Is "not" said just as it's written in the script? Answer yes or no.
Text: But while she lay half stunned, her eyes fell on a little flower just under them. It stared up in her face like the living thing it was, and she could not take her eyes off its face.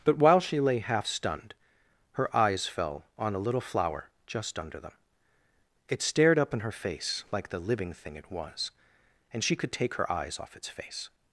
no